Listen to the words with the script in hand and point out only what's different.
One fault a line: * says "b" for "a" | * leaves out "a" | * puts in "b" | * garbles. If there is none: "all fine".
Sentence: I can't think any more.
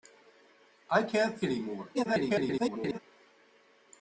* leaves out "think"
* garbles